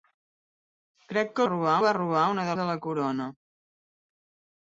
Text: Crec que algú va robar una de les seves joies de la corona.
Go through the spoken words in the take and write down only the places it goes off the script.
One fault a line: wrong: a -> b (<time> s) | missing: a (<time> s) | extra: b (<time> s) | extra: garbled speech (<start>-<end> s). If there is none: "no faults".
wrong: algú -> robar (1.5 s)
missing: les seves joies (2.5 s)